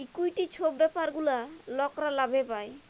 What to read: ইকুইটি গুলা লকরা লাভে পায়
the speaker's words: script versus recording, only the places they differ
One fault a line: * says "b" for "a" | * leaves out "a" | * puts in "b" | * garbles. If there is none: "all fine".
* puts in "ছব ব্যাপার"